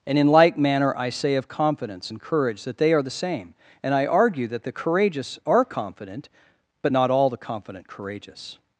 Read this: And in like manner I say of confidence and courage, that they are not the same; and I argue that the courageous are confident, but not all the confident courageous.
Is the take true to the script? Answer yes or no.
no